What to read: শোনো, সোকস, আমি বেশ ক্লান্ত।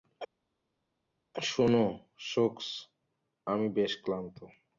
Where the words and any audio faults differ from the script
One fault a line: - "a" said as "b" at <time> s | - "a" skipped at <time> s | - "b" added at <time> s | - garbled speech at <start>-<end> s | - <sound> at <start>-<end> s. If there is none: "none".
none